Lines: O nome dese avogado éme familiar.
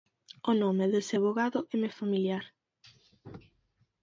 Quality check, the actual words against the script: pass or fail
pass